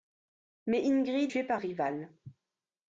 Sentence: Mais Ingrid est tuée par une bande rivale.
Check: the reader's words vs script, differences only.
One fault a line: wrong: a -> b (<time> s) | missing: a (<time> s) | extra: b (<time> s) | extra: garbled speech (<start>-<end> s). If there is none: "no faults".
missing: est (1.3 s)
missing: une bande (1.6 s)